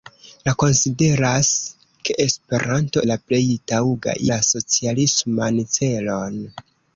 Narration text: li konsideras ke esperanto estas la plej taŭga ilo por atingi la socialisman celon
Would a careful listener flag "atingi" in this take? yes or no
yes